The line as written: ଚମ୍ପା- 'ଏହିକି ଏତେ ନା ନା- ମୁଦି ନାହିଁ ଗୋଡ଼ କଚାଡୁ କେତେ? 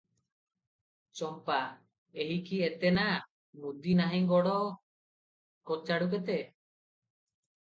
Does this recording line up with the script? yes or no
no